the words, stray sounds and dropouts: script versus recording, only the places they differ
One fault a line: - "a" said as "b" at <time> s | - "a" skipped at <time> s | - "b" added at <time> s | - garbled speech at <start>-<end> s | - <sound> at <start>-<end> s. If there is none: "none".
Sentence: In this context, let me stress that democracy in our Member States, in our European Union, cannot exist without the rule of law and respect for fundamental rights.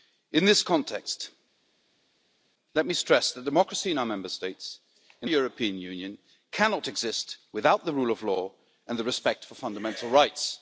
- "our" skipped at 5.3 s